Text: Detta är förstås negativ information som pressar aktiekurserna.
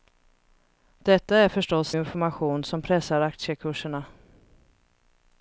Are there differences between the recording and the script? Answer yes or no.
yes